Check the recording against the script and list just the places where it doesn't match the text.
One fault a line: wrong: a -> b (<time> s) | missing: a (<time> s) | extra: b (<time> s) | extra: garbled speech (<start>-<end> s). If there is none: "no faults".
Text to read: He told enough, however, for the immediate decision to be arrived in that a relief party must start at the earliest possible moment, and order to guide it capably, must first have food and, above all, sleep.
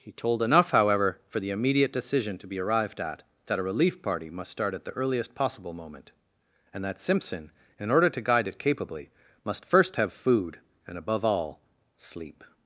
wrong: in -> at (3.0 s)
extra: that Simpson in (6.8 s)